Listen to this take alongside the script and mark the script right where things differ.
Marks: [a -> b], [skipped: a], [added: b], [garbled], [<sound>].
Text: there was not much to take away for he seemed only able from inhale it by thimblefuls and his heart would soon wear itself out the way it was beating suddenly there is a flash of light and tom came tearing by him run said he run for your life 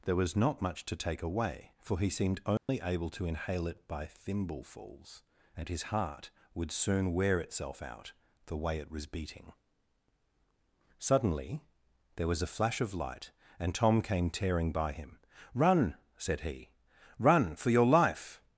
there was not much to take away for he seemed only [dropout] able [from -> to] inhale it by thimblefuls and his heart would soon wear itself out the way it was beating suddenly there [is -> was] a flash of light and tom came tearing by him run said he run for your life